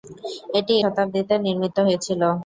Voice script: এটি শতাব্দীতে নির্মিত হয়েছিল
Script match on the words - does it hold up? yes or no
yes